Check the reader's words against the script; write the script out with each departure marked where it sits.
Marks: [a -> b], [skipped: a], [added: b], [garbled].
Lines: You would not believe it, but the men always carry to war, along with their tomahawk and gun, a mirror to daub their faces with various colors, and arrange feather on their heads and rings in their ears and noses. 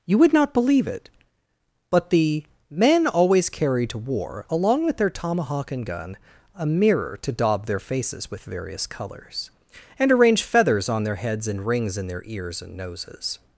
You would not believe it, but the men always carry to war, along with their tomahawk and gun, a mirror to daub their faces with various colors, and arrange [feather -> feathers] on their heads and rings in their ears and noses.